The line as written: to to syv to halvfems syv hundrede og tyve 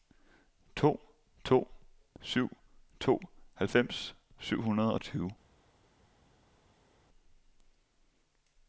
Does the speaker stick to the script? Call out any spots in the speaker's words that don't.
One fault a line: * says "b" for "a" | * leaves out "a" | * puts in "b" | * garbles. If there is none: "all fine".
all fine